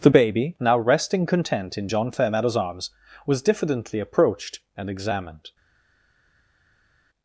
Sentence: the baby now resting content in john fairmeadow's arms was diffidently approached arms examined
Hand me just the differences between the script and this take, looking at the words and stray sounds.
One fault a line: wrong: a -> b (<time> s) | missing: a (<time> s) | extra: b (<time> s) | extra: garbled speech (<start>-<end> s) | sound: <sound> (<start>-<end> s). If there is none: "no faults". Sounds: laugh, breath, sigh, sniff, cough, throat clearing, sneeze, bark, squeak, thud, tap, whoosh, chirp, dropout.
wrong: arms -> and (4.8 s)